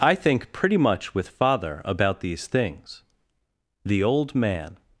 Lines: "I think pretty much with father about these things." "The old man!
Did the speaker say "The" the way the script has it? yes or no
yes